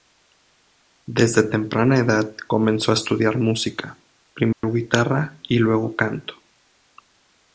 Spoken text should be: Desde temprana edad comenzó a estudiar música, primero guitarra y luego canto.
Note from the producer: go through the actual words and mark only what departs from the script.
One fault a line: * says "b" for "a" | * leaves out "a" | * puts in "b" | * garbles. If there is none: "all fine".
all fine